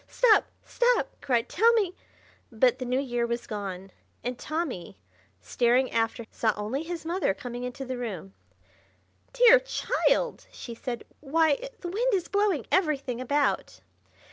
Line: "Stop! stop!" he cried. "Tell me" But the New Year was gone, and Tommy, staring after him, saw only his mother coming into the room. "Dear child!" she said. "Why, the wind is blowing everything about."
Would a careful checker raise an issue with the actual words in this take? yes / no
yes